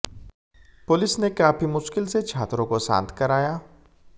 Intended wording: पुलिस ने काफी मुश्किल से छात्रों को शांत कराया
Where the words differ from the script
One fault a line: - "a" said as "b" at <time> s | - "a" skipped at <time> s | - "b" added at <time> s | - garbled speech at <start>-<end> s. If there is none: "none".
none